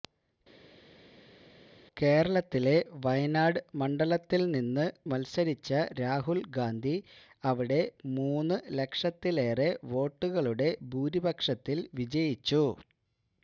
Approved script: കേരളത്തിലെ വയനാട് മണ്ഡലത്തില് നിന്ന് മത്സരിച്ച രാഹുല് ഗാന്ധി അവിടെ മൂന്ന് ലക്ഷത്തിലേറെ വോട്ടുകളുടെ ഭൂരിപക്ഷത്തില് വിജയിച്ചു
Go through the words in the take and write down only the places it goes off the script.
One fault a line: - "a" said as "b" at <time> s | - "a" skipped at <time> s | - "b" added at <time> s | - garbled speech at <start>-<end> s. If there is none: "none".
none